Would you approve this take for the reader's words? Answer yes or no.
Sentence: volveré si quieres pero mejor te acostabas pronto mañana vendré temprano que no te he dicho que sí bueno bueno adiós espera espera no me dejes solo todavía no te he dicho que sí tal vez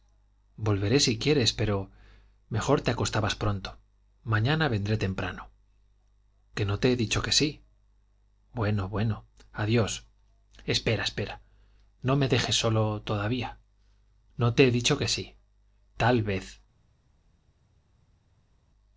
yes